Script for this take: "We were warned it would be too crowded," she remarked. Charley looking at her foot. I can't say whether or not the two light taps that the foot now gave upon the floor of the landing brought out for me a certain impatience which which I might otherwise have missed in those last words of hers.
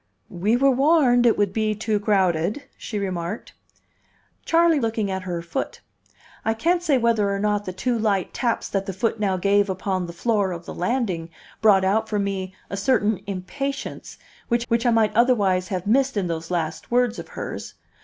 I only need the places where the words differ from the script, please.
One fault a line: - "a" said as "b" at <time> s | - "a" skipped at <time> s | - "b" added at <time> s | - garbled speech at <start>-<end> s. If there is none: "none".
none